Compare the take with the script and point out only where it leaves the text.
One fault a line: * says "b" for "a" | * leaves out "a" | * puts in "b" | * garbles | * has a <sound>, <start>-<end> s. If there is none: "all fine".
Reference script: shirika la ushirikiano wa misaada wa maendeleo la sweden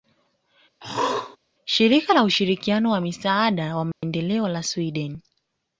* has a throat clearing, 0.8-1.4 s
* has a dropout, 3.9-4.0 s